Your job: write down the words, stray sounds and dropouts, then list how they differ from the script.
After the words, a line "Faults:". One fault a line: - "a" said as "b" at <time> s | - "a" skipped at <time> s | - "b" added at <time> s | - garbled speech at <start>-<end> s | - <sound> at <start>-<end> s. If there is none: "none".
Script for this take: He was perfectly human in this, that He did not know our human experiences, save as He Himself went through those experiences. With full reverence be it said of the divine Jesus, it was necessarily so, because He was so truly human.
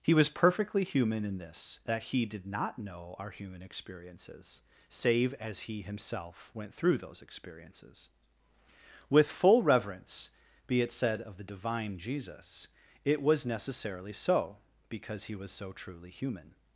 He was perfectly human in this, that He did not know our human experiences, save as He Himself went through those experiences. With full reverence be it said of the divine Jesus, it was necessarily so, because He was so truly human.
Faults:
none